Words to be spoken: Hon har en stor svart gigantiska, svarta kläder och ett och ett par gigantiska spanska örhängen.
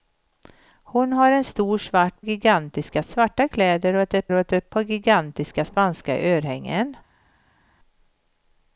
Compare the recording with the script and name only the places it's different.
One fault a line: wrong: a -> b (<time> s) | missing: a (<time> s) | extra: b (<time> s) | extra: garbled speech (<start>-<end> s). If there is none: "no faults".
no faults